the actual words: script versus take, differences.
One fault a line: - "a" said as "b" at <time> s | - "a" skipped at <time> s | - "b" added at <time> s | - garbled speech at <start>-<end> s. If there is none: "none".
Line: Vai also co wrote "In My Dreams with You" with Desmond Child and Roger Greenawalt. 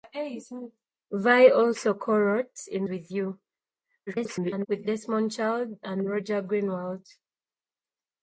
- "My Dreams" skipped at 2.9 s
- garbled speech at 4.1-4.7 s